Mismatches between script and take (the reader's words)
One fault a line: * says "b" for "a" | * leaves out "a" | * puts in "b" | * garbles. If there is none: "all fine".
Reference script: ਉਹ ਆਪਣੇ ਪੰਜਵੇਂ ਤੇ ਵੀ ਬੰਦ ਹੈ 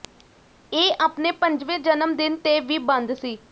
* says "ਇਹ" for "ਉਹ"
* puts in "ਜਨਮ ਦਿਨ"
* says "ਸੀ" for "ਹੈ"